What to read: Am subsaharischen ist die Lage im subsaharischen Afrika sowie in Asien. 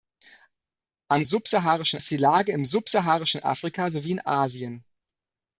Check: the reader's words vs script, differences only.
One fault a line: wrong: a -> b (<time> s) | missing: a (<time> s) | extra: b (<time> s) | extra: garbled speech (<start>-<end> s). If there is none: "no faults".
no faults